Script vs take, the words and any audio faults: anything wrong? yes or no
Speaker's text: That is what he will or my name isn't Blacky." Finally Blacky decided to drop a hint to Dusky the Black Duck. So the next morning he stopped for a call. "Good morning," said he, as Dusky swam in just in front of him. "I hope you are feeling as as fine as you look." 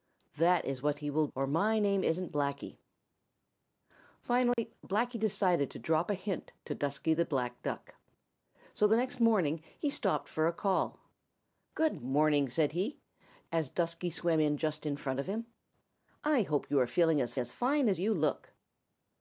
yes